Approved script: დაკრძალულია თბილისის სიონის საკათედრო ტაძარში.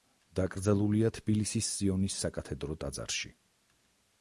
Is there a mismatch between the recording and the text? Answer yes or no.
no